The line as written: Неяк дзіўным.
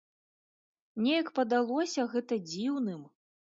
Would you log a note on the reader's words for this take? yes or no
yes